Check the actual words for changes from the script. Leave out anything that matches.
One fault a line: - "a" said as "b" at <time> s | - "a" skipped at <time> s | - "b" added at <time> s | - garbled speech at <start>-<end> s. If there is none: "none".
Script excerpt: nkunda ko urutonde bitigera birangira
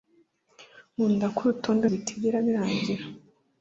none